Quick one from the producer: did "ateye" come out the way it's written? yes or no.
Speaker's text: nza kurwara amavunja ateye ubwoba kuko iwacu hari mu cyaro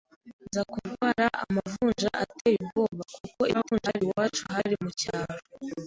yes